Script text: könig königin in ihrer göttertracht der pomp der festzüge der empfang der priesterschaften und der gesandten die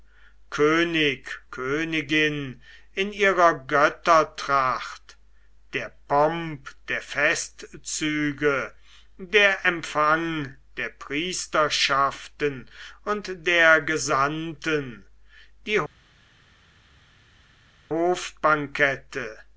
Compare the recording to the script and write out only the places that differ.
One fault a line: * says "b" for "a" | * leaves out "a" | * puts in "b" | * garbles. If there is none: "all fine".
all fine